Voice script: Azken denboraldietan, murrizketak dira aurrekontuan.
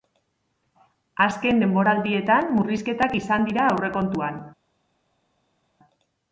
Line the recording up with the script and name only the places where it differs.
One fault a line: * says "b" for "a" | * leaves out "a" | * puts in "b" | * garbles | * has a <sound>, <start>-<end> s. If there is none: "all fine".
* puts in "izan"